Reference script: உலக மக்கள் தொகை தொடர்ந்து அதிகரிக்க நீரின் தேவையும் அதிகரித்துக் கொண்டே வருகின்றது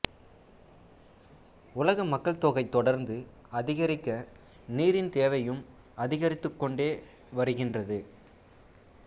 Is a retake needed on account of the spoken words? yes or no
no